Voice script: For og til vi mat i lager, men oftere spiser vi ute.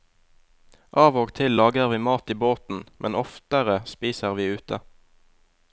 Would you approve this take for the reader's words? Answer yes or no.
no